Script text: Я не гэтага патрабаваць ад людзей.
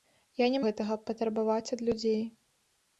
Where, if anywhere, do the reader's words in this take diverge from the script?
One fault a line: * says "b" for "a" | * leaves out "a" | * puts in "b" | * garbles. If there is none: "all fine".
all fine